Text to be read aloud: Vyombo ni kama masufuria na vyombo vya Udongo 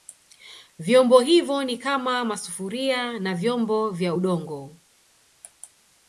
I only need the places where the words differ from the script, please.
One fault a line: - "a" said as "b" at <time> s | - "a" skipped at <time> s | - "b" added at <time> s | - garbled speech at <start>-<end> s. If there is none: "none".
- "hivyo" added at 1.2 s